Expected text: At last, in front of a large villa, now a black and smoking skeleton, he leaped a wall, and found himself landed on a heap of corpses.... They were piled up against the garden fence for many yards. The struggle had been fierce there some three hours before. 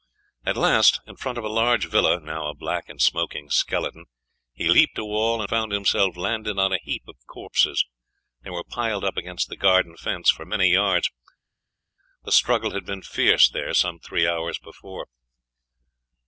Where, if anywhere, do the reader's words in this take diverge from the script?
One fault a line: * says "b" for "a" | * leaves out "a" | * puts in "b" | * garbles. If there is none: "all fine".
* leaves out "and"